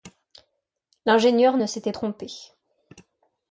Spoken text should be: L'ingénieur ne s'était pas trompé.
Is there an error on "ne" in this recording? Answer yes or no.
no